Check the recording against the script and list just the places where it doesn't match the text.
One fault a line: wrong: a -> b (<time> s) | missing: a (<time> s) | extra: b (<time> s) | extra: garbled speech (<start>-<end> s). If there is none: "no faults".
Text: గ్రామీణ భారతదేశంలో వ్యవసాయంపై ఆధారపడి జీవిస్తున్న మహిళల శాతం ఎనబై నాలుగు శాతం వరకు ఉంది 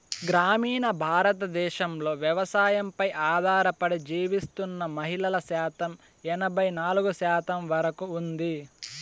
no faults